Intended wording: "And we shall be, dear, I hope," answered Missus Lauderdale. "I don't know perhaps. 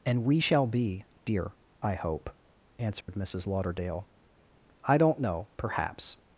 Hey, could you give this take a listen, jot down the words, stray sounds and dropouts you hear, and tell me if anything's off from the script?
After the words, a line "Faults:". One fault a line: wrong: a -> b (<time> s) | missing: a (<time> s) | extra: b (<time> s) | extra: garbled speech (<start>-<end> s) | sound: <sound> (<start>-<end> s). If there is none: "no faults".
"And we shall be, dear, I hope," answered Missus Lauderdale. "I don't know perhaps.
Faults:
sound: dropout (3.0-3.1 s)